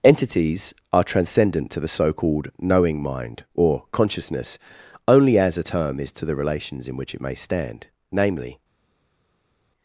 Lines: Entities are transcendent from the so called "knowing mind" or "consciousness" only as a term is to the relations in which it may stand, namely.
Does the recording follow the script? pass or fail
fail